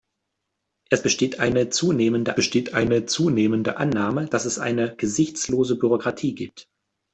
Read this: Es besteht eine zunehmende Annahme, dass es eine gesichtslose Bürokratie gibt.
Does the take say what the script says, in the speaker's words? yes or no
no